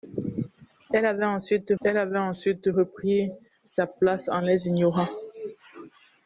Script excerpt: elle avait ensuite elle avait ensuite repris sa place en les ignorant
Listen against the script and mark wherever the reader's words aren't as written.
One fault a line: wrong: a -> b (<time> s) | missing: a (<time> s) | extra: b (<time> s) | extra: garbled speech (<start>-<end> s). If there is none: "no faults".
no faults